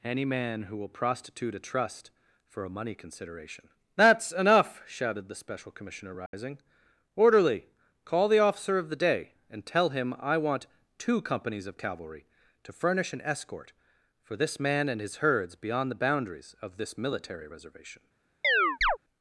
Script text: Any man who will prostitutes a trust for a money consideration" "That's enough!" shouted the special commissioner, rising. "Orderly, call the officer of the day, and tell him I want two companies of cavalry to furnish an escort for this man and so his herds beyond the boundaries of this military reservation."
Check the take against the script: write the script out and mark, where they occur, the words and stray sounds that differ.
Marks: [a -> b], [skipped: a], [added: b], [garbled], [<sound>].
Any man who will [prostitutes -> prostitute] a trust for a money consideration" "That's enough!" shouted the special commissioner, rising. [dropout] "Orderly, call the officer of the day, and tell him I want two companies of cavalry to furnish an escort for this man and [skipped: so] his herds beyond the boundaries of this military reservation." [chirp]